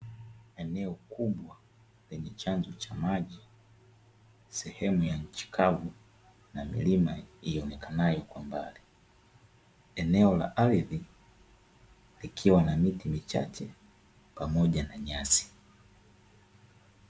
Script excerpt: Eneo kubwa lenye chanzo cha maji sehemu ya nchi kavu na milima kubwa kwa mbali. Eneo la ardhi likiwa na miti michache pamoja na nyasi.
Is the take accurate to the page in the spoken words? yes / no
no